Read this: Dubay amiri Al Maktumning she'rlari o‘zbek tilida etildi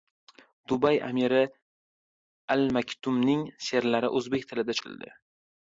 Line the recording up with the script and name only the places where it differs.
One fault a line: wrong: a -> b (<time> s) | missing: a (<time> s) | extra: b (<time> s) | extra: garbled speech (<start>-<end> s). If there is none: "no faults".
no faults